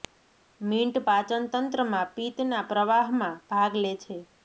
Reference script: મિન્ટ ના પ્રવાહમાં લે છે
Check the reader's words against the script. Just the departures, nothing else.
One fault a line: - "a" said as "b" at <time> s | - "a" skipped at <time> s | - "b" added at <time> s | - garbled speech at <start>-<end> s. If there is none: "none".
- "પાચન તંત્રમાં પિત્ત" added at 1.1 s
- "ભાગ" added at 3.5 s